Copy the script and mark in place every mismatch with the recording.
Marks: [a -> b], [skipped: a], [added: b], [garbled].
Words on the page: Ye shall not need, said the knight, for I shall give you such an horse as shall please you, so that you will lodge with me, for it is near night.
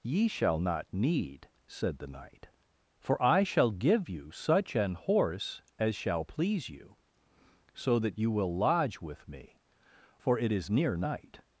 Ye shall not need, said the knight, for I shall give you such an horse as shall please you, so that you will lodge with me, for it is near night.